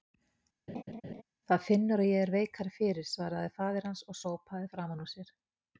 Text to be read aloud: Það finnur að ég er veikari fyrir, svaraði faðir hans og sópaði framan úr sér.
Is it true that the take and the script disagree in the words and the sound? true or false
true